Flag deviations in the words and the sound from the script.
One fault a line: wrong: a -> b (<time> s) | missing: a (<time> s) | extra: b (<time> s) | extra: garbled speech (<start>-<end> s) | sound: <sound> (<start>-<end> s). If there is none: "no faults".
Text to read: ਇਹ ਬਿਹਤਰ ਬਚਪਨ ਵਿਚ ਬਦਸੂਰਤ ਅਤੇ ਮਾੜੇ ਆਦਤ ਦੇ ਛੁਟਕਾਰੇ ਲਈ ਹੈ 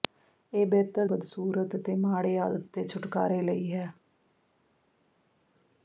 missing: ਬਚਪਨ ਵਿਚ (1.1 s)